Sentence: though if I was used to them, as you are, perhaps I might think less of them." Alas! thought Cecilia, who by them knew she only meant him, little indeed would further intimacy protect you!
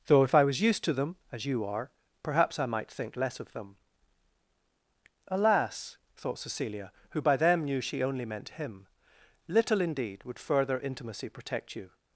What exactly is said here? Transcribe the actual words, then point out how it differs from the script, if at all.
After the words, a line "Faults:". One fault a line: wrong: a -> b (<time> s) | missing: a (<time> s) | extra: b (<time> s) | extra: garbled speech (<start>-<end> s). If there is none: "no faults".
though if I was used to them, as you are, perhaps I might think less of them." Alas! thought Cecilia, who by them knew she only meant him, little indeed would further intimacy protect you!
Faults:
no faults